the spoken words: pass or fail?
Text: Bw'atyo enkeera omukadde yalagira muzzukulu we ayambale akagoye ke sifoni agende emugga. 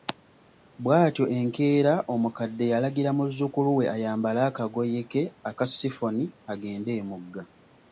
fail